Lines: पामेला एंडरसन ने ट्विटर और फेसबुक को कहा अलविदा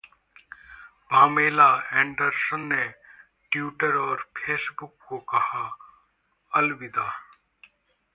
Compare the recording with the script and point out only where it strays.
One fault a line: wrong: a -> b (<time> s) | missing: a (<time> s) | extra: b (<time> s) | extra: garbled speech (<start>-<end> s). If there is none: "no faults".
no faults